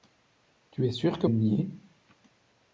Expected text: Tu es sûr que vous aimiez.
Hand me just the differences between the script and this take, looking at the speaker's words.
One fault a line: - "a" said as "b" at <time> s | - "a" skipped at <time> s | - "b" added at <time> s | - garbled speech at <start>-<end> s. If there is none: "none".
- "vous" skipped at 1.3 s